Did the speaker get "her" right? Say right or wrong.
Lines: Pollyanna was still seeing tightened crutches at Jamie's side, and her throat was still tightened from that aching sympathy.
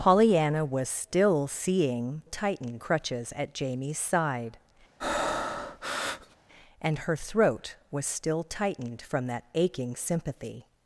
right